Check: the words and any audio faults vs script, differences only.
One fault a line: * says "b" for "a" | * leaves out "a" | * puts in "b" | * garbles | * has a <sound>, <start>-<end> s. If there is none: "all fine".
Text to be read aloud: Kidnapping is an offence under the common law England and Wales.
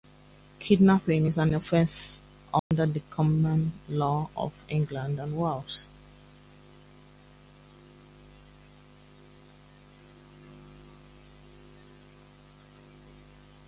* has a dropout, 2.6-2.7 s
* puts in "of"